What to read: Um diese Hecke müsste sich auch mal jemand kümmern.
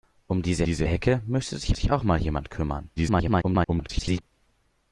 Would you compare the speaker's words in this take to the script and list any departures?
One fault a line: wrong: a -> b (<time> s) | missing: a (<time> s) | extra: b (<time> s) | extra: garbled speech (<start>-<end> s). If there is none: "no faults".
extra: diese (0.6 s)
extra: sich (1.7 s)
extra: garbled speech (3.0-4.2 s)